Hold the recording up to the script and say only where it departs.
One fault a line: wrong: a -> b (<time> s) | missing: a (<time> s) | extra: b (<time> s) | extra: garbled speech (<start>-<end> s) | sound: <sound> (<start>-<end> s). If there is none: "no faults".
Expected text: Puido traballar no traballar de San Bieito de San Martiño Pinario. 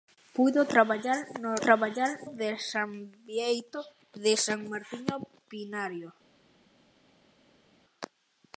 no faults